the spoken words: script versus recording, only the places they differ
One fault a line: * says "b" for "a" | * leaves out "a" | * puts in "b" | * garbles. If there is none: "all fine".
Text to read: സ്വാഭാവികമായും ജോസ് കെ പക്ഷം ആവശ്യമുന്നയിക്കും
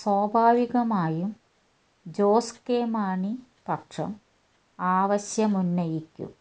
* puts in "മാണി"